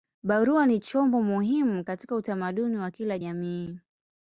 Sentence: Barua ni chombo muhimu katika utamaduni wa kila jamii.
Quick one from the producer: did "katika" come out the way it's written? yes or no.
yes